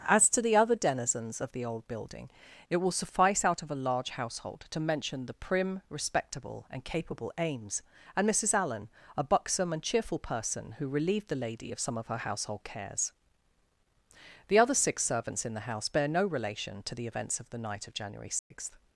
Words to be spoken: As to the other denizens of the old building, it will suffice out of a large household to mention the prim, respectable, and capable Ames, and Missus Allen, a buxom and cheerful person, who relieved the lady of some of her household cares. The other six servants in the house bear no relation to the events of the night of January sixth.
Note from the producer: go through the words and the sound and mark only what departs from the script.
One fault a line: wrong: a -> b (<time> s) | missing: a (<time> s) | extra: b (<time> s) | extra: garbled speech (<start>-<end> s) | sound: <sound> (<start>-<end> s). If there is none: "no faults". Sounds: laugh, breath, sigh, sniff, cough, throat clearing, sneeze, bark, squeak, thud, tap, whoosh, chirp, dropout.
sound: dropout (18.4-18.5 s)